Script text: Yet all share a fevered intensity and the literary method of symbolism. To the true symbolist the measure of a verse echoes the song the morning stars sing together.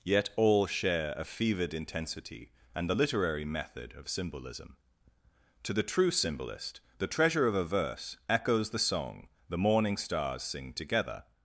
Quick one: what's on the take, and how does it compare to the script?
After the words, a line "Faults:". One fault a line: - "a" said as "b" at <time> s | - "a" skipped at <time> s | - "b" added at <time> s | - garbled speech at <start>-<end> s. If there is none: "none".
Yet all share a fevered intensity and the literary method of symbolism. To the true symbolist the treasure of a verse echoes the song the morning stars sing together.
Faults:
- "measure" said as "treasure" at 7.1 s